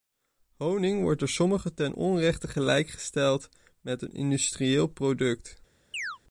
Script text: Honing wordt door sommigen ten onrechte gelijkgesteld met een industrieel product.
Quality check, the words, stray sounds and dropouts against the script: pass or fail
fail